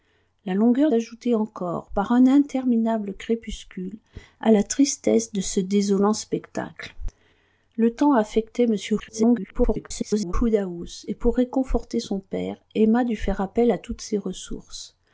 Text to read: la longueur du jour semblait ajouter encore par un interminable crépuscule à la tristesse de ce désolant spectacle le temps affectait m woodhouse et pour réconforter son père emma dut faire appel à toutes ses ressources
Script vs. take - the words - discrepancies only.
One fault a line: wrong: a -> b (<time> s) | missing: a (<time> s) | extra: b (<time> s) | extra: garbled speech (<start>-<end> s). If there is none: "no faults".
missing: du jour semblait (0.9 s)
extra: garbled speech (9.0-10.3 s)